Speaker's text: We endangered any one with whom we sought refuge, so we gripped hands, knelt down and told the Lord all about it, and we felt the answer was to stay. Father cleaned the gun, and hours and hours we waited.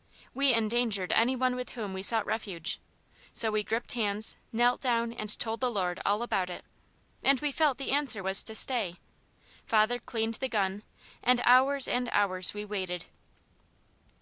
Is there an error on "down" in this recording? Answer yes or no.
no